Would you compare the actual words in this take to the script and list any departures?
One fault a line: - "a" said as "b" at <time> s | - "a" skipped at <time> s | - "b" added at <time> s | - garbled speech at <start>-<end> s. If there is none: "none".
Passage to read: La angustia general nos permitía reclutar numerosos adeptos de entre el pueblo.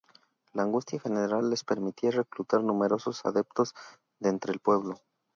- "nos" said as "les" at 1.5 s